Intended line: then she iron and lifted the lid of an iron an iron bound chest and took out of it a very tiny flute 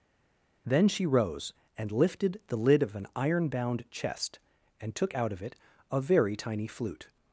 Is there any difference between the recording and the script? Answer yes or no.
yes